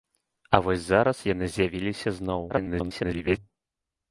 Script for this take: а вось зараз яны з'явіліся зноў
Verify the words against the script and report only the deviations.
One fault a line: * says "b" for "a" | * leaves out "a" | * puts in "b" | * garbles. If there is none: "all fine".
* garbles